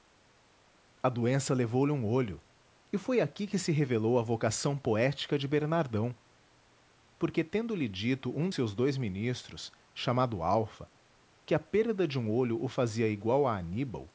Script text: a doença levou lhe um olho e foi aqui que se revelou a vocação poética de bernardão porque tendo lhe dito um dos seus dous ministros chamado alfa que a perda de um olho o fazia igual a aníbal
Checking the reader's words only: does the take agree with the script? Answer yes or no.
no